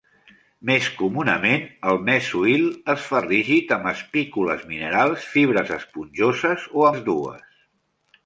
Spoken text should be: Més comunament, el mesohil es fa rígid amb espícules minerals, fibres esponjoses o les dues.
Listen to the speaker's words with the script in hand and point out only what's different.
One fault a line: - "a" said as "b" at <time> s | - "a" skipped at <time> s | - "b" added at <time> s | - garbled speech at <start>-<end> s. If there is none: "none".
none